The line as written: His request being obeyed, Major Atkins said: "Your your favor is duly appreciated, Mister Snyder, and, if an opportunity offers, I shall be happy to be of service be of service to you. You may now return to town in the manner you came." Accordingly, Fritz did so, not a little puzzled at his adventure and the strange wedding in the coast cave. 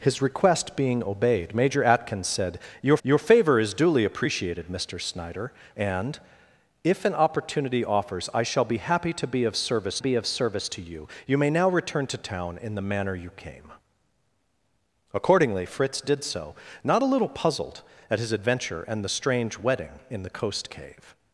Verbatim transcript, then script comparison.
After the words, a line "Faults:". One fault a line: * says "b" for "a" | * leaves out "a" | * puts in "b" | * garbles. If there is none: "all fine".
His request being obeyed, Major Atkins said: "Your your favor is duly appreciated, Mister Snyder, and, if an opportunity offers, I shall be happy to be of service be of service to you. You may now return to town in the manner you came." Accordingly, Fritz did so, not a little puzzled at his adventure and the strange wedding in the coast cave.
Faults:
all fine